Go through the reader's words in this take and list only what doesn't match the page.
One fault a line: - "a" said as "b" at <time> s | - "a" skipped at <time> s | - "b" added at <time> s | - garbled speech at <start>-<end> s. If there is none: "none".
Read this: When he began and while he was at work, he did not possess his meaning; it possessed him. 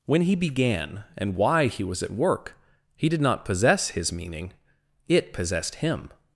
- "while" said as "why" at 1.4 s